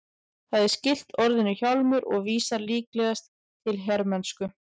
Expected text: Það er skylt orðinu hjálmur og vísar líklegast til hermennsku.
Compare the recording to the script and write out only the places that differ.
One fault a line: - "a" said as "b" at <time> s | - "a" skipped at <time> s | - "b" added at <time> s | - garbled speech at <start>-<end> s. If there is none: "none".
none